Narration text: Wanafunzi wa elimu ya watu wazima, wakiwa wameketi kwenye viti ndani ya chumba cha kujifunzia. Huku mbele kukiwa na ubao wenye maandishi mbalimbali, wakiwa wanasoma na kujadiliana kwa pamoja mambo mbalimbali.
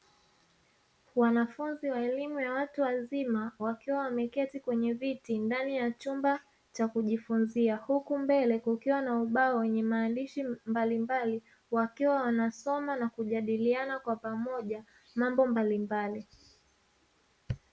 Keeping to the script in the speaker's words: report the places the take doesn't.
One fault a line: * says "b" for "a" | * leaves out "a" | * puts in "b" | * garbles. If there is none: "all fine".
all fine